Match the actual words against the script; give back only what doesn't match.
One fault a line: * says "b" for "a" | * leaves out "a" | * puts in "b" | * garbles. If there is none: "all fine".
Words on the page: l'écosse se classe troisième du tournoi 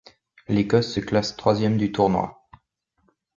all fine